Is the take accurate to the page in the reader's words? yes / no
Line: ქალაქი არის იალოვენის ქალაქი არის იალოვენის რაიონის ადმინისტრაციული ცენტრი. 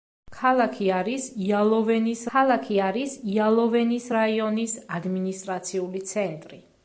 yes